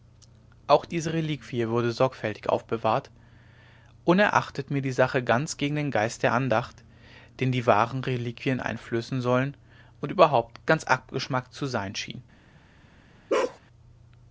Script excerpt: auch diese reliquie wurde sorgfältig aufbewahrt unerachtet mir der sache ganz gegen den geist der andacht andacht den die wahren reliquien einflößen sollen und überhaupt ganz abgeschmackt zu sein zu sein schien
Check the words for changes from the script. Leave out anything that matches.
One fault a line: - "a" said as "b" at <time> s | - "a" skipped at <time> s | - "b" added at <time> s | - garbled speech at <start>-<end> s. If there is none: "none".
- "der" said as "die" at 4.8 s
- "andacht" skipped at 6.8 s
- "zu sein" skipped at 12.0 s